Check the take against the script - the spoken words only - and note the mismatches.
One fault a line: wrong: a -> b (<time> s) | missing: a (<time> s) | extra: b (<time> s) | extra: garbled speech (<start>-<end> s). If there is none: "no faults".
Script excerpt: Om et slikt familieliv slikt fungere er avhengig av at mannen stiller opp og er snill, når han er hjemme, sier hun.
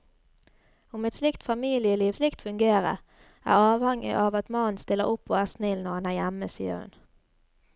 no faults